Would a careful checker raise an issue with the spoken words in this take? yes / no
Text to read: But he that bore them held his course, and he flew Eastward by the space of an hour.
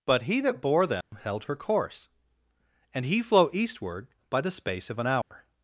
yes